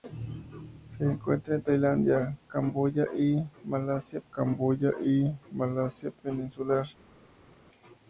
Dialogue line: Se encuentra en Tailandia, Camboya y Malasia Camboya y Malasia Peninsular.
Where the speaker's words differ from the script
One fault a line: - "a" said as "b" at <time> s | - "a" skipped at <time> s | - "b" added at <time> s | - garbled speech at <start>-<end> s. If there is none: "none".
none